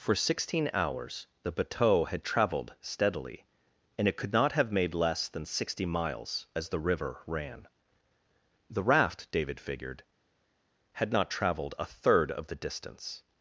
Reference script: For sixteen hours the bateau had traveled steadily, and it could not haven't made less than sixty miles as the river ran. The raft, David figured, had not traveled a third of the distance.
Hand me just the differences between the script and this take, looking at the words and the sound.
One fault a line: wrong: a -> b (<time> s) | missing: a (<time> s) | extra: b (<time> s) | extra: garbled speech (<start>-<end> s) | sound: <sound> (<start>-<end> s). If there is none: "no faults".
wrong: haven't -> have (4.5 s)